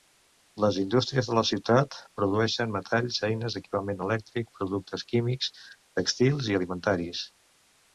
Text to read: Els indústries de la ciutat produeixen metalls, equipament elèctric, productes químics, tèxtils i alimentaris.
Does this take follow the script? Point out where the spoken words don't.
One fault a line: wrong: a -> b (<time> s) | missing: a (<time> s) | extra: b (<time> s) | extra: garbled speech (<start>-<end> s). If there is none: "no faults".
wrong: Els -> Les (0.6 s)
extra: eines (3.3 s)